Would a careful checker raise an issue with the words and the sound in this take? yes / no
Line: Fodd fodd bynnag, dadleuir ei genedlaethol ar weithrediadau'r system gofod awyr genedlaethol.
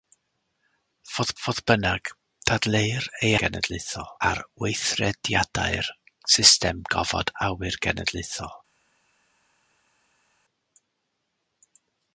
no